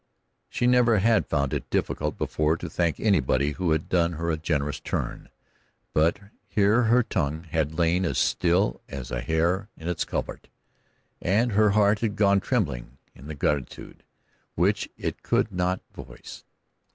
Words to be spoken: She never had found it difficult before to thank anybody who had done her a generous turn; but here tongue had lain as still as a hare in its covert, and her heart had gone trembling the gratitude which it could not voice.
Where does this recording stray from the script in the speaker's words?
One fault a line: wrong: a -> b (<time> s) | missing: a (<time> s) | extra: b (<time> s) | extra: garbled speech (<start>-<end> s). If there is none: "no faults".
extra: her (6.8 s)
extra: in (13.1 s)